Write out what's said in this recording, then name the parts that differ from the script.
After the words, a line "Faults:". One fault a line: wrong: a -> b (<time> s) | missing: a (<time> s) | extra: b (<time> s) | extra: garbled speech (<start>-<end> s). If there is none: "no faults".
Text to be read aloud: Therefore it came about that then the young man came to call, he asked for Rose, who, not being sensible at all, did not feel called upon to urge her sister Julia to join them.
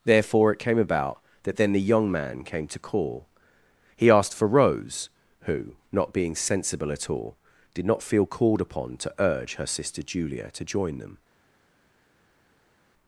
Therefore it came about that then the young man came to call, he asked for Rose, who, not being sensible at all, did not feel called upon to urge her sister Julia to join them.
Faults:
no faults